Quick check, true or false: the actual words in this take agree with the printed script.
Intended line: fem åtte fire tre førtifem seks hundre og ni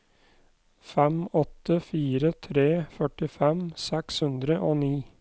true